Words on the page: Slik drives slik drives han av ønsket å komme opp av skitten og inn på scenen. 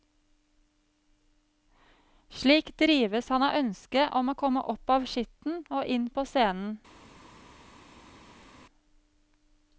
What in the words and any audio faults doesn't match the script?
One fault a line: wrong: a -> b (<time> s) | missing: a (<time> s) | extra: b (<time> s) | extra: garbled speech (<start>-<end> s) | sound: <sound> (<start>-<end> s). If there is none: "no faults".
missing: slik drives (3.3 s)
extra: om (4.2 s)